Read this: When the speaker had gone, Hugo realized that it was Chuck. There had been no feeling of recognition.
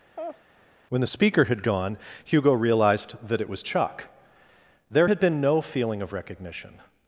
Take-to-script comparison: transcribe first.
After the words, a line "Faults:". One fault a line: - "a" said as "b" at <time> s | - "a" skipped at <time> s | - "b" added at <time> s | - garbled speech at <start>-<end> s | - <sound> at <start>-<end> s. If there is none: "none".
When the speaker had gone, Hugo realized that it was Chuck. There had been no feeling of recognition.
Faults:
- laugh at 0.2-0.4 s